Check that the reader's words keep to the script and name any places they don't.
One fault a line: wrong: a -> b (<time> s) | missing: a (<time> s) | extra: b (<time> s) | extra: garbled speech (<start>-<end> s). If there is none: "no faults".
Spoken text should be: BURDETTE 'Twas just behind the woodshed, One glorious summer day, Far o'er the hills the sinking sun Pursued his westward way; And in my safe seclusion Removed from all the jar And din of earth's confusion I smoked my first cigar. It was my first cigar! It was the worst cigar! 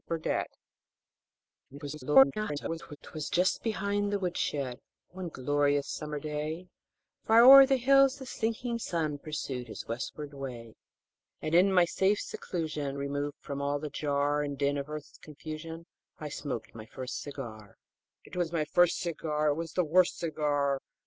extra: garbled speech (1.7-3.0 s)